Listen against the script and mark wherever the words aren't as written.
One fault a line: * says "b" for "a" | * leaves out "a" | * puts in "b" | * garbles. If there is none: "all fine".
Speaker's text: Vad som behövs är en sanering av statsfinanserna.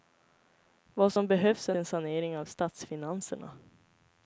all fine